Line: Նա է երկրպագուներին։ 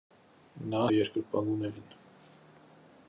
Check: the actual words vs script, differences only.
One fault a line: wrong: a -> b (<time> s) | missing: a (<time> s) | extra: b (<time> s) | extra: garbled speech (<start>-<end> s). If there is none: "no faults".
no faults